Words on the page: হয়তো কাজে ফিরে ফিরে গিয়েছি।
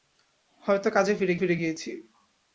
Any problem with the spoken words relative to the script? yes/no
no